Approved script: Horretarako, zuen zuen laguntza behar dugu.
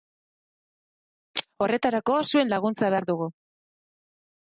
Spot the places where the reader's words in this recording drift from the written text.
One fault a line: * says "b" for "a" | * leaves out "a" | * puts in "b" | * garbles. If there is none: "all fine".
* leaves out "zuen"